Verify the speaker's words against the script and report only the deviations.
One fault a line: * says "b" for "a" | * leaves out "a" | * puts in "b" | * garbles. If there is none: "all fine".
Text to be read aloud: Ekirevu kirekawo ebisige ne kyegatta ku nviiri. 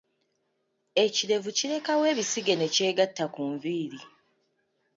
all fine